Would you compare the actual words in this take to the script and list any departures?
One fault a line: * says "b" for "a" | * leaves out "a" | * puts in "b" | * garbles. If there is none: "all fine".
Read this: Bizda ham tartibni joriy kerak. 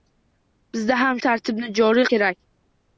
all fine